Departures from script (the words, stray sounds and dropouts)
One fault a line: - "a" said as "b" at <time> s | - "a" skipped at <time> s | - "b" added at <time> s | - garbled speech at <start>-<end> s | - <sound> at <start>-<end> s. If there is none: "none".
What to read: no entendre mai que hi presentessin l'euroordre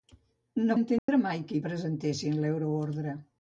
- dropout at 1.0-1.1 s